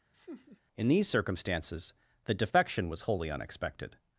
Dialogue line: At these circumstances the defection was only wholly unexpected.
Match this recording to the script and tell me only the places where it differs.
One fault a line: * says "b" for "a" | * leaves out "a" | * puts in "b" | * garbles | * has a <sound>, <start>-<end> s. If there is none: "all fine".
* has a laugh, 0.1-0.6 s
* says "In" for "At"
* leaves out "only"